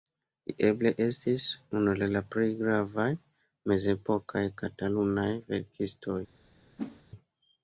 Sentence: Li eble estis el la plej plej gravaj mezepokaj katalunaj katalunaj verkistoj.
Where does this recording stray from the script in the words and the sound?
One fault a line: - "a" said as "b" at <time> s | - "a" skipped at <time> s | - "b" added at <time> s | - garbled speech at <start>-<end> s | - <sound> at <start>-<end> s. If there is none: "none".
- "unu" added at 1.8 s
- "plej" skipped at 2.5 s
- "katalunaj" skipped at 5.3 s
- whoosh at 6.8-7.0 s